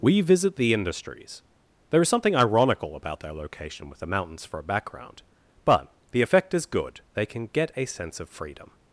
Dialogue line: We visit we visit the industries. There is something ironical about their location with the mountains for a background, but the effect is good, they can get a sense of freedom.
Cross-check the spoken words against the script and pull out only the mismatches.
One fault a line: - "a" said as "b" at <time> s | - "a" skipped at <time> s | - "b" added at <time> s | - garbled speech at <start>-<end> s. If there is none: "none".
- "we visit" skipped at 0.6 s